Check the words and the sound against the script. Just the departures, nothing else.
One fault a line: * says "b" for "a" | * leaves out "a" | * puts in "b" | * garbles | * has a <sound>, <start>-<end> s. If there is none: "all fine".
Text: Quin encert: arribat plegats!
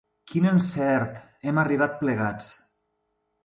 * puts in "hem"